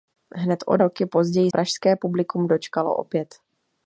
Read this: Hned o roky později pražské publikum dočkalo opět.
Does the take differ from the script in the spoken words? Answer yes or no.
no